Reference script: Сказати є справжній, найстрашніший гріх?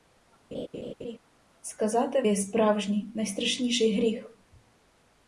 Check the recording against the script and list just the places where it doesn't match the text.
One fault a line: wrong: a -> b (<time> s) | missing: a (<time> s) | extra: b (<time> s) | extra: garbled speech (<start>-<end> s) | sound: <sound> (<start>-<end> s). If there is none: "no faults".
sound: laugh (0.5-1.2 s)